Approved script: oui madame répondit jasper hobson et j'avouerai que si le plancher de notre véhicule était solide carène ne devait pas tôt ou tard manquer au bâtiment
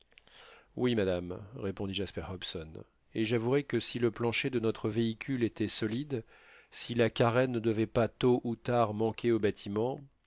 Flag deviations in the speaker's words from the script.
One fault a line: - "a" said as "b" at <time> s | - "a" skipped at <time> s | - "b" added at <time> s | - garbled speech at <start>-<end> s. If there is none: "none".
- "si la" added at 6.7 s